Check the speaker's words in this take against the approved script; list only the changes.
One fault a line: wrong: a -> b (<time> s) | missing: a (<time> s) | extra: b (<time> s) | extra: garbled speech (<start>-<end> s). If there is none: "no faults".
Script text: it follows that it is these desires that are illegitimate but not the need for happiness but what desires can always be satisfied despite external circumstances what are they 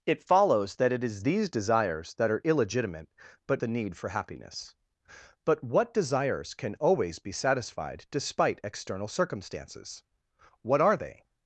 missing: not (3.6 s)